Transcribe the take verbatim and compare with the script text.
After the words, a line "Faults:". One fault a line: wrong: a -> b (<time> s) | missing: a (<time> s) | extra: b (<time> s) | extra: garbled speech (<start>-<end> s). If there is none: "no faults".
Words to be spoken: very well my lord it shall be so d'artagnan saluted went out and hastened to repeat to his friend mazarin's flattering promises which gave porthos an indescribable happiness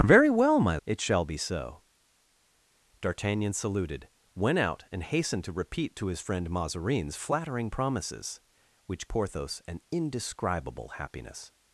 very well my it shall be so d'artagnan saluted went out and hastened to repeat to his friend mazarin's flattering promises which porthos an indescribable happiness
Faults:
missing: lord (0.8 s)
missing: gave (9.1 s)